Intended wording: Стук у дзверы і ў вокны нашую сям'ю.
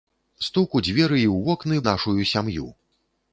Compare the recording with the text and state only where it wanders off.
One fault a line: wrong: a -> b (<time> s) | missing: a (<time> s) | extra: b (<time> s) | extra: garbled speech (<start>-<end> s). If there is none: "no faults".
no faults